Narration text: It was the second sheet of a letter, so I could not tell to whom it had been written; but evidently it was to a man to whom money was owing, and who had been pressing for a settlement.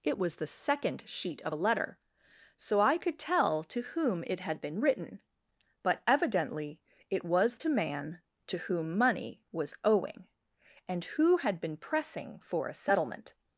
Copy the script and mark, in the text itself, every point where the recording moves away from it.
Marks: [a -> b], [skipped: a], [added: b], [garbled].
It was the second sheet of a letter, so I could [skipped: not] tell to whom it had been written; but evidently it was to [skipped: a] man to whom money was owing, and who had been pressing for a settlement.